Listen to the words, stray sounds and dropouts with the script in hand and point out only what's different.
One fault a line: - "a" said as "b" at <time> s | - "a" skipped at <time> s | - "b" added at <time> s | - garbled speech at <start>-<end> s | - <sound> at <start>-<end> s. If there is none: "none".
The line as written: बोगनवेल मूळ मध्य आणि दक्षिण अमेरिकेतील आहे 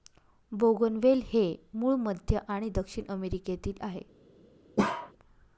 - "हे" added at 1.2 s
- bark at 4.8-5.1 s